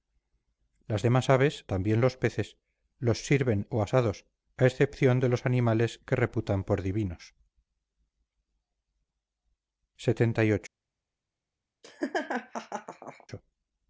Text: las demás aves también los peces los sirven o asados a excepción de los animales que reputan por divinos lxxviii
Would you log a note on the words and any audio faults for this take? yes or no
yes